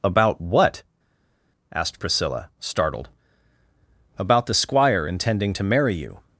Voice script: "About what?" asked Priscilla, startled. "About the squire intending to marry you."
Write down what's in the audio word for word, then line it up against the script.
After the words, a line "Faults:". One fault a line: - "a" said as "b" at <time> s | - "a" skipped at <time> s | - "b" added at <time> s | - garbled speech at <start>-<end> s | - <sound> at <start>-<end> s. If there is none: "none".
"About what?" asked Priscilla, startled. "About the squire intending to marry you."
Faults:
none